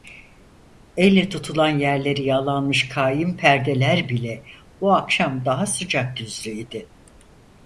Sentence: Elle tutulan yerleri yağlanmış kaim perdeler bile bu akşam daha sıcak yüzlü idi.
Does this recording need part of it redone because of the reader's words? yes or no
no